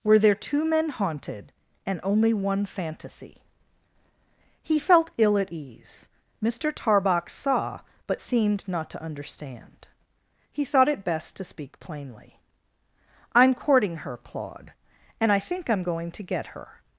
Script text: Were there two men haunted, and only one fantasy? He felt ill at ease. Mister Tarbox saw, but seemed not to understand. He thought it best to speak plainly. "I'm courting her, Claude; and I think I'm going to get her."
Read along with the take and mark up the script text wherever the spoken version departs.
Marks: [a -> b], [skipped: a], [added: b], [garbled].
Were there two men haunted, and only one fantasy? He felt ill at ease. Mister Tarbox saw, but seemed not to understand. He thought it best to speak plainly. "I'm courting her, Claude; and I think I'm going to get her."